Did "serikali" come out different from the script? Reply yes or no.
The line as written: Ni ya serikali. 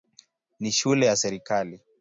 no